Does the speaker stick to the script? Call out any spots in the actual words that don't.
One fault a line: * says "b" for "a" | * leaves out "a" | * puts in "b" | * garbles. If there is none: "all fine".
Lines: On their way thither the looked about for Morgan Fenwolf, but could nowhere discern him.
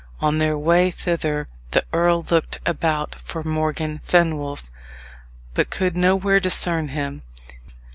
* puts in "earl"